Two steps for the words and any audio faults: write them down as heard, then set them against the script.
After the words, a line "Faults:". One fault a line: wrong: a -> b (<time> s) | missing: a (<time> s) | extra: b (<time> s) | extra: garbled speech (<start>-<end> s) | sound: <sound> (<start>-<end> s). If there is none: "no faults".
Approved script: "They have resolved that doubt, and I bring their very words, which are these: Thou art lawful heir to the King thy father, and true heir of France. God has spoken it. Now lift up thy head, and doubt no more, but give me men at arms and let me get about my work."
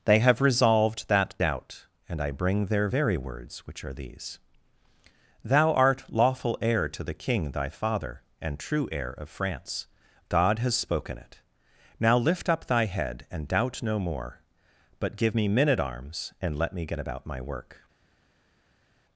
"They have resolved that doubt, and I bring their very words, which are these: Thou art lawful heir to the King thy father, and true heir of France. God has spoken it. Now lift up thy head, and doubt no more, but give me men at arms and let me get about my work."
Faults:
no faults